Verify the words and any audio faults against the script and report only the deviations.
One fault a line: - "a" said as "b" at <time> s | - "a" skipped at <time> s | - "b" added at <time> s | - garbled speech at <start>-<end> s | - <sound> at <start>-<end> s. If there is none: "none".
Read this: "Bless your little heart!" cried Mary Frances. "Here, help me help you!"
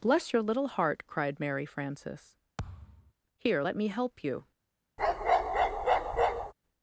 - thud at 2.6-3.1 s
- "help" said as "let" at 3.6 s
- bark at 5.0-6.5 s